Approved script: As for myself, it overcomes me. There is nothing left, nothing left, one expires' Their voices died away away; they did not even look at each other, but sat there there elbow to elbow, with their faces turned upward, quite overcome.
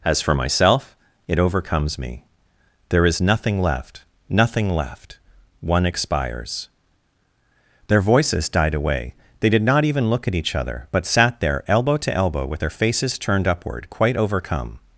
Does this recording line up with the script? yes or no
no